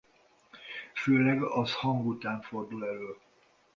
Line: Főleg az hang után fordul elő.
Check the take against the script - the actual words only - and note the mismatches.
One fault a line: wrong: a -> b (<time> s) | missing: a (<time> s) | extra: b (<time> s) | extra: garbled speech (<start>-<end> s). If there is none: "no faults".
no faults